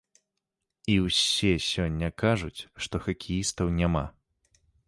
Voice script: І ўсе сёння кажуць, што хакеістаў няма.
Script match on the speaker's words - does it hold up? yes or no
yes